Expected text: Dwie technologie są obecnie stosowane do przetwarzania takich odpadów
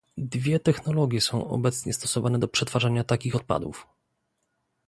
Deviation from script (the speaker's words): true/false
false